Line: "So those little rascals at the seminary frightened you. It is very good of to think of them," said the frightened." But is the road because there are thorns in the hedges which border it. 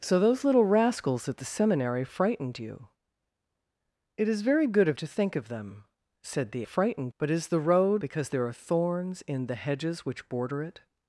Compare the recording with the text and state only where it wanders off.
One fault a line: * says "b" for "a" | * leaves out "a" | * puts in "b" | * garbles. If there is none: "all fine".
all fine